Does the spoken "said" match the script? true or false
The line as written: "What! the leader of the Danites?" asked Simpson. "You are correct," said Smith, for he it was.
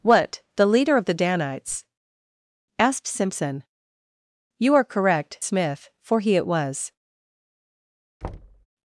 false